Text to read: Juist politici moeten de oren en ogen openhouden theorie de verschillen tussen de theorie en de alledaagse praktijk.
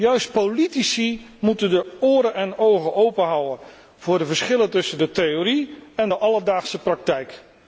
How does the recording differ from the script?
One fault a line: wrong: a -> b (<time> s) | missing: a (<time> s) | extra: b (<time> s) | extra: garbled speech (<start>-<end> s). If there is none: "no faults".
wrong: theorie -> voor (4.0 s)